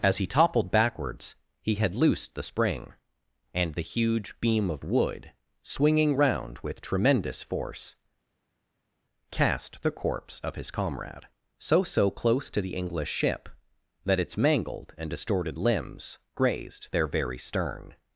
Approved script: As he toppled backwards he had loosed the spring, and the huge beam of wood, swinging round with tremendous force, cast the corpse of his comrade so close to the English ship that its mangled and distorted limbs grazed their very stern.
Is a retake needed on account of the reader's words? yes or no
yes